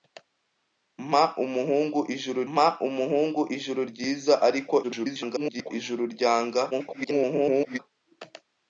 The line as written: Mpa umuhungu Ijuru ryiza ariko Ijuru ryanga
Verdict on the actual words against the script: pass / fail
fail